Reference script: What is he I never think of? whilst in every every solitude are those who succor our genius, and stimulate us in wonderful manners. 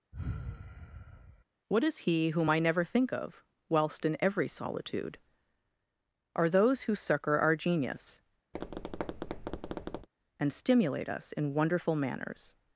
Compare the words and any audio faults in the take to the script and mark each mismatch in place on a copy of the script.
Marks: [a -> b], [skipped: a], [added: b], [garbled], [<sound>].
[sigh] What is he [added: whom] I never think of? whilst in every [skipped: every] solitude are those who succor our genius, [tap] and stimulate us in wonderful manners.